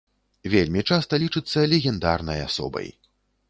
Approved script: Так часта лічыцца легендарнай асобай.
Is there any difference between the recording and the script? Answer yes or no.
yes